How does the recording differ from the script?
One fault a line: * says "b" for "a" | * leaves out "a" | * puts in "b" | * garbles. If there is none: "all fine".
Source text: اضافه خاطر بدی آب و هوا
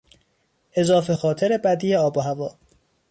all fine